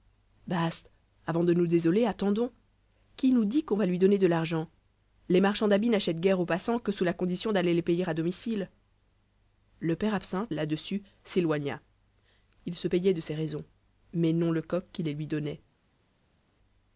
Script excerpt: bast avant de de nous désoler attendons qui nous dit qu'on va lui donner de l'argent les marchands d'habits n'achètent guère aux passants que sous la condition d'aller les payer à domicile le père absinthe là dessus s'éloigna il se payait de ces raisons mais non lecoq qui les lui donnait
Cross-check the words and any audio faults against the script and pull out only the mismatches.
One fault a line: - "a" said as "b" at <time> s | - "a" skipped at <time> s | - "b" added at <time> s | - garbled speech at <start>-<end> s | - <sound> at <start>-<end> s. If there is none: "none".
- "de" skipped at 1.5 s